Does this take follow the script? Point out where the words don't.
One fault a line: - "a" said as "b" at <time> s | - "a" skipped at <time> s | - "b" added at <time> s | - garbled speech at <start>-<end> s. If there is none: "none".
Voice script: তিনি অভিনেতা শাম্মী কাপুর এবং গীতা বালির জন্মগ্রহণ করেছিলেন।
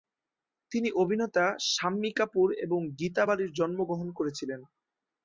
none